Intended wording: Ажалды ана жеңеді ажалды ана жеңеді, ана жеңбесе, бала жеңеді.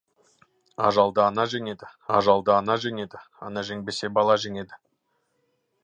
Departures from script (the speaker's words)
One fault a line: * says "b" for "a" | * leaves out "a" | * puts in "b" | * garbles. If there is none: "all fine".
all fine